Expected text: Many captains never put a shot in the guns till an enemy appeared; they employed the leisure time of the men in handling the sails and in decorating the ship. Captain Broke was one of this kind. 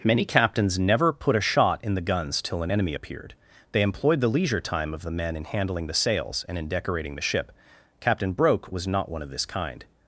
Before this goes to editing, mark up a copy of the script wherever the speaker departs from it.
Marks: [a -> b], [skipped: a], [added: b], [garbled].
Many captains never put a shot in the guns till an enemy appeared; they employed the leisure time of the men in handling the sails and in decorating the ship. Captain Broke was [added: not] one of this kind.